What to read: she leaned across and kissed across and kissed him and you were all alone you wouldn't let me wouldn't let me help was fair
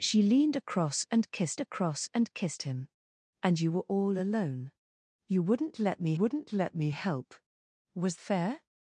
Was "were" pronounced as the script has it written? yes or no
yes